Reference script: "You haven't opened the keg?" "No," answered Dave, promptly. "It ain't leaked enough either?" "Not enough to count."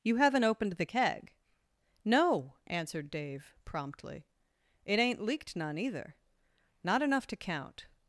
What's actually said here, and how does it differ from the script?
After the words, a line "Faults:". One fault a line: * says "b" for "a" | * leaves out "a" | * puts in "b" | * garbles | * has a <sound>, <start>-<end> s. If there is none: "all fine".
"You haven't opened the keg?" "No," answered Dave, promptly. "It ain't leaked none either?" "Not enough to count."
Faults:
* says "none" for "enough"